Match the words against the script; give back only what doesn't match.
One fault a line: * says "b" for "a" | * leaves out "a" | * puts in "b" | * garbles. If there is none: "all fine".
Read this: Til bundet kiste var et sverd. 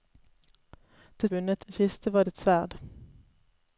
all fine